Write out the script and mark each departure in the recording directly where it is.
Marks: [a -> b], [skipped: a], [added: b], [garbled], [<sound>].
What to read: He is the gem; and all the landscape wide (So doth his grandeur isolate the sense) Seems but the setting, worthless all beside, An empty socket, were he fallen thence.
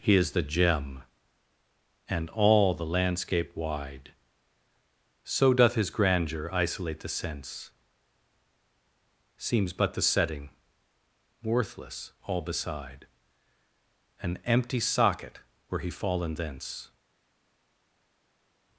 He is the gem; and all the landscape wide (So doth his grandeur isolate the sense) Seems but the setting, worthless all beside, An empty socket, were he fallen thence.